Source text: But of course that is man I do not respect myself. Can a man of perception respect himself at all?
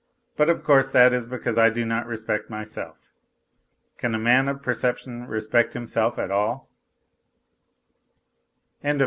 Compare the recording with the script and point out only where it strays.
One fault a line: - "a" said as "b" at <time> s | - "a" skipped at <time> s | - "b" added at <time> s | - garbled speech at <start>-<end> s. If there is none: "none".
- "man" said as "because" at 1.3 s